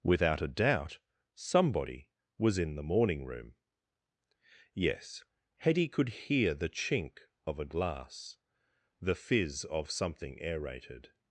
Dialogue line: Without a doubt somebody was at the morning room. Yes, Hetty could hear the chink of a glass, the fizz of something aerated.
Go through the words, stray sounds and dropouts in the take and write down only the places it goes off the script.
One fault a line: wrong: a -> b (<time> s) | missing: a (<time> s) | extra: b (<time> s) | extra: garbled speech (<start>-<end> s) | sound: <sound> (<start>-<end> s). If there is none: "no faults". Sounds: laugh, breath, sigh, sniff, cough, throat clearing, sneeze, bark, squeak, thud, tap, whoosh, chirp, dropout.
wrong: at -> in (2.6 s)